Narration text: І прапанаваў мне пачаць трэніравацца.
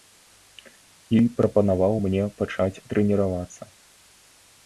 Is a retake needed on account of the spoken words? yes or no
no